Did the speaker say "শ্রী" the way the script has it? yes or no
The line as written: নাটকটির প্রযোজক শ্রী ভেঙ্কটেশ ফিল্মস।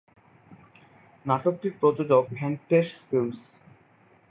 no